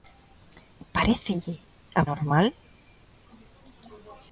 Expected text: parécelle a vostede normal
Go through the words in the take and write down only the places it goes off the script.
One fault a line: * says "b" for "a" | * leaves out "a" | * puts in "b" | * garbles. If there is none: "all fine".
* leaves out "vostede"